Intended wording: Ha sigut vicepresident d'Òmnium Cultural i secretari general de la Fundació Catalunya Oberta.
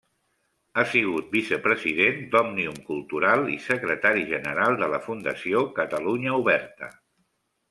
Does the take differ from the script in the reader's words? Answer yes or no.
no